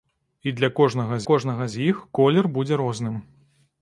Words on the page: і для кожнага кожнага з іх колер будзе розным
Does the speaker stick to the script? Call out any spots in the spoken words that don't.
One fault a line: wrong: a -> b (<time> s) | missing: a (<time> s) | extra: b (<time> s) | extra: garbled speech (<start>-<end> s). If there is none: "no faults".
no faults